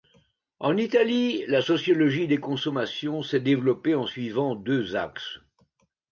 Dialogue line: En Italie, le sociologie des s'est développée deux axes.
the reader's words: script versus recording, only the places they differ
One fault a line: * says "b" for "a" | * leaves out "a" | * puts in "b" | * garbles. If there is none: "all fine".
* says "la" for "le"
* puts in "consommations"
* puts in "en suivant"